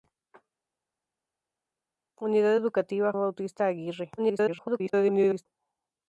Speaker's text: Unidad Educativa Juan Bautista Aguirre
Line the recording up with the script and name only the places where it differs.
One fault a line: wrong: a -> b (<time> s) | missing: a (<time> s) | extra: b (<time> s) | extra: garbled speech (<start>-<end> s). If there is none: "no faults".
missing: Juan (3.1 s)
extra: garbled speech (4.2-5.5 s)